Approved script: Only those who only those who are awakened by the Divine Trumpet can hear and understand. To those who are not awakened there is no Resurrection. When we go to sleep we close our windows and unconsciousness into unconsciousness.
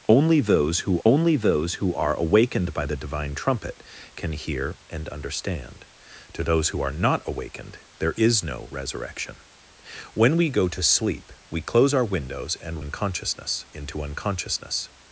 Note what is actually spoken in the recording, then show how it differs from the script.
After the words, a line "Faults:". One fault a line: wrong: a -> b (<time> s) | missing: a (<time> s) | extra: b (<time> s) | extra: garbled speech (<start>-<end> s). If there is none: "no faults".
Only those who only those who are awakened by the Divine Trumpet can hear and understand. To those who are not awakened there is no Resurrection. When we go to sleep we close our windows and unconsciousness into unconsciousness.
Faults:
no faults